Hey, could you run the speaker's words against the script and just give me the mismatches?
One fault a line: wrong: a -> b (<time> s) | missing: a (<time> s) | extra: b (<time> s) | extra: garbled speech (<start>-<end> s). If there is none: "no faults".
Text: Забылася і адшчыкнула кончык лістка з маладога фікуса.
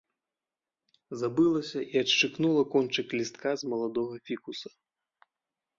no faults